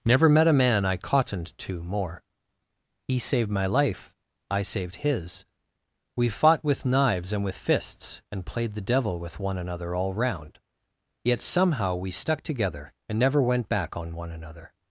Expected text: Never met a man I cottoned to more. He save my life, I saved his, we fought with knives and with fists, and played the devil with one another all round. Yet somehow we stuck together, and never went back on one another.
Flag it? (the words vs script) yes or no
yes